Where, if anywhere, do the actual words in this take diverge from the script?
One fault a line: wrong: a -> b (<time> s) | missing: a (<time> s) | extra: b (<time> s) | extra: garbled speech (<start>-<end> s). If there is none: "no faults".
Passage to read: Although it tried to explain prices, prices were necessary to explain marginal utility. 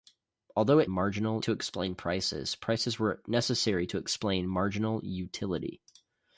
wrong: tried -> marginal (0.9 s)